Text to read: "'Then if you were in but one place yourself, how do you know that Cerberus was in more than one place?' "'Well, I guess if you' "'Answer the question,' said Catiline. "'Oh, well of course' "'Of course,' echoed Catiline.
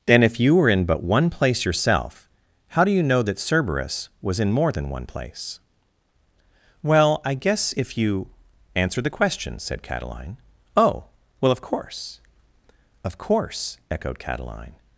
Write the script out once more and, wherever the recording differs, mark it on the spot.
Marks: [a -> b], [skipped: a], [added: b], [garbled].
"'Then if you were in but one place yourself, how do you know that Cerberus was in more than one place?' "'Well, I guess if you' "'Answer the question,' said Catiline. "'Oh, well of course' "'Of course,' echoed Catiline.